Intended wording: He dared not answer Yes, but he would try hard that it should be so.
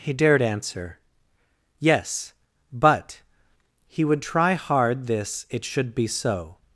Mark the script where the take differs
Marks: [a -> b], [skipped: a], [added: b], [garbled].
He dared [skipped: not] answer Yes, but he would try hard [that -> this] it should be so.